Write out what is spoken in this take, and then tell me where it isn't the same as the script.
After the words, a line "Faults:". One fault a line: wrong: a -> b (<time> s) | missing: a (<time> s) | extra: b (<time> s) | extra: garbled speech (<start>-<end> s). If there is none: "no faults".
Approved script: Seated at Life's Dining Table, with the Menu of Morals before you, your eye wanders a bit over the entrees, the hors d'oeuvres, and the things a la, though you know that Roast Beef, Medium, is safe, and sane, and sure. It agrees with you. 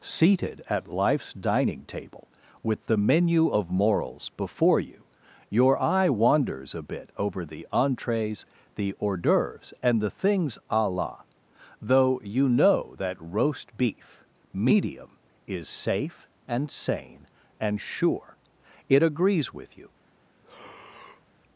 Seated at Life's Dining Table, with the Menu of Morals before you, your eye wanders a bit over the entrees, the hors d'oeuvres, and the things a la, though you know that Roast Beef, Medium, is safe, and sane, and sure. It agrees with you.
Faults:
no faults